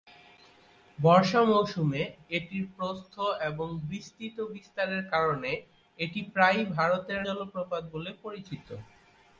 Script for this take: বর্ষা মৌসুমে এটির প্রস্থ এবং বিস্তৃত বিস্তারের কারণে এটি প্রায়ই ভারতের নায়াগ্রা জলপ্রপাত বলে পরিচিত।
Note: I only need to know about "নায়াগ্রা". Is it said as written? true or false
false